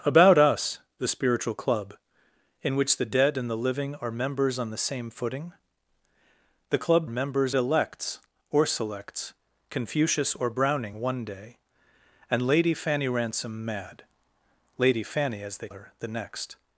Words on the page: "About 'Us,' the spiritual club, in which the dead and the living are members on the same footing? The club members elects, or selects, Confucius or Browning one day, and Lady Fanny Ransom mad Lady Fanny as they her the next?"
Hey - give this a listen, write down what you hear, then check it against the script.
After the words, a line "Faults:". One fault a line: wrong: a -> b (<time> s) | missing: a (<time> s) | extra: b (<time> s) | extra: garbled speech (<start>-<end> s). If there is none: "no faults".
"About 'Us,' the spiritual club, in which the dead and the living are members on the same footing? The club members elects, or selects, Confucius or Browning one day, and Lady Fanny Ransom mad Lady Fanny as they her the next?"
Faults:
no faults